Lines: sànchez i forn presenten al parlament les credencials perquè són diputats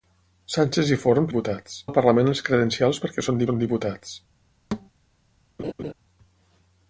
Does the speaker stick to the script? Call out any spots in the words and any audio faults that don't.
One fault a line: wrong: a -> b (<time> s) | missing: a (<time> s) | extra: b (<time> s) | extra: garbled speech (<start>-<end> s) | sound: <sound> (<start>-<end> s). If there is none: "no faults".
wrong: presenten -> diputats (1.3 s)
extra: són (3.5 s)
sound: thud (4.7-4.9 s)
sound: laugh (5.6-5.9 s)